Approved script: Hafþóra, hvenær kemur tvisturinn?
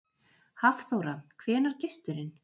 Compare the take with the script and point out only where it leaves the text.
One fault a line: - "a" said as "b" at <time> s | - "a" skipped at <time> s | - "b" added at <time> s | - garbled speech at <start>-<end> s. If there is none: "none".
- "kemur" skipped at 1.8 s